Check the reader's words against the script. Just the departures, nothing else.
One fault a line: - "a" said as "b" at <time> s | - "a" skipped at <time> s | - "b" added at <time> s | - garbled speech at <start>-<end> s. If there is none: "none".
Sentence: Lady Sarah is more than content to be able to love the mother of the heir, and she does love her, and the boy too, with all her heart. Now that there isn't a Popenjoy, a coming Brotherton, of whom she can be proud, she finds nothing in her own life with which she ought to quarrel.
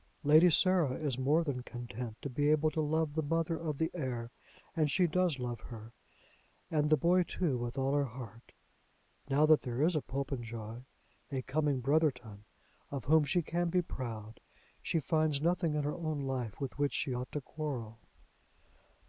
- "isn't" said as "is" at 9.8 s